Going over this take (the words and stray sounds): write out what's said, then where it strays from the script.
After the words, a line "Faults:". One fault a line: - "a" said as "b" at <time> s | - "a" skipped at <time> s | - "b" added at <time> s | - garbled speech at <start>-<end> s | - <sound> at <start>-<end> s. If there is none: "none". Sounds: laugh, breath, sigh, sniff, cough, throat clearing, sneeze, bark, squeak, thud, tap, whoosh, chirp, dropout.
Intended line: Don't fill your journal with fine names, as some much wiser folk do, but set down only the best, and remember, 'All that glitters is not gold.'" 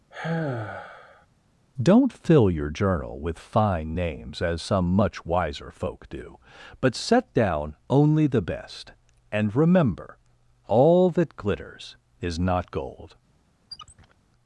Don't fill your journal with fine names, as some much wiser folk do, but set down only the best, and remember, 'All that glitters is not gold.'"
Faults:
- sigh at 0.1-1.3 s
- squeak at 13.7-14.1 s